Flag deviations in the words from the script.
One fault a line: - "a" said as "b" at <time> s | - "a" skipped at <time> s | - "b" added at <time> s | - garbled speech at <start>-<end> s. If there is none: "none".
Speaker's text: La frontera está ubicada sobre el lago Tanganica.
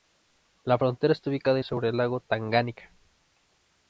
none